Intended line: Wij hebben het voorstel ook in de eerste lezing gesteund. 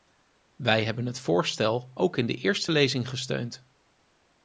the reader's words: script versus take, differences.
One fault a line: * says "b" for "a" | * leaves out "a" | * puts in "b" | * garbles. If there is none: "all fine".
all fine